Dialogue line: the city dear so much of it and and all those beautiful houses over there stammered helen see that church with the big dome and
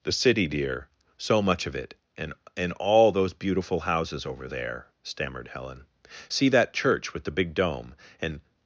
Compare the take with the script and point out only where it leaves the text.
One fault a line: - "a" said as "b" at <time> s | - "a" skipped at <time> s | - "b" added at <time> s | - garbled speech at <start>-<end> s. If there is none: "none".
none